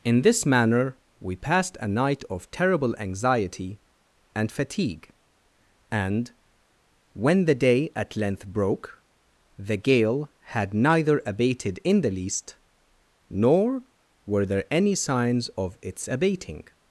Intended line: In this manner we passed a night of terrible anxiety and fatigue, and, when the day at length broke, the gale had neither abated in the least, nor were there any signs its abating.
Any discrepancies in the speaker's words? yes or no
yes